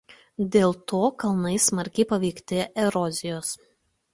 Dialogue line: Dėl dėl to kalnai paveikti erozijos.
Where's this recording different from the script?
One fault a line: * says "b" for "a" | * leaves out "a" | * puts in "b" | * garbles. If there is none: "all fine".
* leaves out "dėl"
* puts in "smarkiai"